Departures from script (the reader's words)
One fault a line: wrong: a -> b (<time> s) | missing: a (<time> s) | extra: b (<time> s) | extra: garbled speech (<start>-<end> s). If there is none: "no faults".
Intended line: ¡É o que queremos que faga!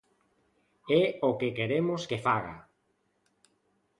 no faults